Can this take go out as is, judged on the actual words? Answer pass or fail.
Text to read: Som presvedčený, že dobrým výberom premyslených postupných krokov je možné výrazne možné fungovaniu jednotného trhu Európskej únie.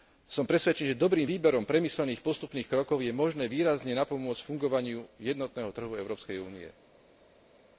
fail